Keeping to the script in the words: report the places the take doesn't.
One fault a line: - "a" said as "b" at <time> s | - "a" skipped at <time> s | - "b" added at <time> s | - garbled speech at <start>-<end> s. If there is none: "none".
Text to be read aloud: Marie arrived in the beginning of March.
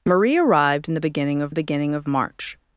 - "the beginning of" added at 1.5 s